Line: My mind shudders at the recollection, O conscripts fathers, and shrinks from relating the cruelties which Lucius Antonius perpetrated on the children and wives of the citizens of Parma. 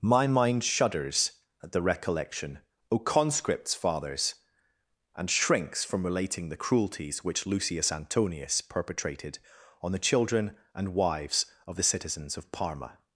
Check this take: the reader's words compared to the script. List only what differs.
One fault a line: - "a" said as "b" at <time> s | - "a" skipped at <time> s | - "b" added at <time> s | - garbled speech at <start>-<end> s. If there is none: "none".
none